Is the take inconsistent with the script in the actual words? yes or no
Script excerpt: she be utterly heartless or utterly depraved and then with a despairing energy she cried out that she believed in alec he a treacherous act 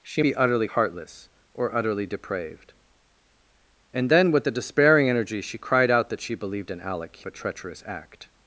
no